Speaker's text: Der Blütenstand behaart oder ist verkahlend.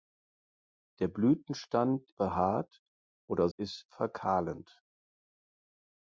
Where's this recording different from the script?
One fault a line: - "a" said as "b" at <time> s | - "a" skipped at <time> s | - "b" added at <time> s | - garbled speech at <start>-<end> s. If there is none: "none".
none